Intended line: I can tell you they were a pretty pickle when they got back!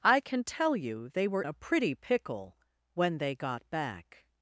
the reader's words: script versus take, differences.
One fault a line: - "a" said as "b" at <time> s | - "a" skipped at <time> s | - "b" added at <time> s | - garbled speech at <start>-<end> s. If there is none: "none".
none